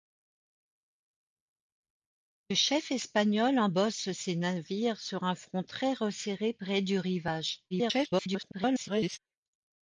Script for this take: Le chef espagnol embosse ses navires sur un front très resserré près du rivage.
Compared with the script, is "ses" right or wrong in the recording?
right